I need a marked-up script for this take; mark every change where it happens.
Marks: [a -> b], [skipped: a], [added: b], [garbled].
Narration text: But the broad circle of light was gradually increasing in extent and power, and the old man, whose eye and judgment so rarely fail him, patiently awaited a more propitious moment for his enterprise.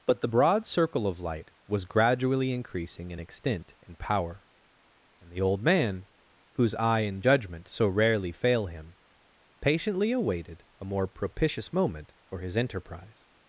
But the broad circle of light was gradually increasing in extent and power, and the old man, whose eye and judgment so rarely fail him, patiently awaited a more propitious moment for his enterprise.